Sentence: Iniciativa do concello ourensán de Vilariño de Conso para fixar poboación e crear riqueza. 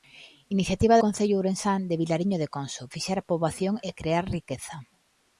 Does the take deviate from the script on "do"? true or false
true